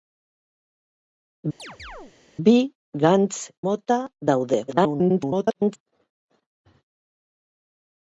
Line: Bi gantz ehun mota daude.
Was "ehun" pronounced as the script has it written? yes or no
no